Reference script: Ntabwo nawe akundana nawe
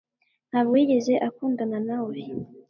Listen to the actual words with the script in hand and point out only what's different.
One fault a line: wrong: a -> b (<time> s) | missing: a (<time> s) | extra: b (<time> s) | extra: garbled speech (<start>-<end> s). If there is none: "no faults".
wrong: nawe -> yigeze (0.8 s)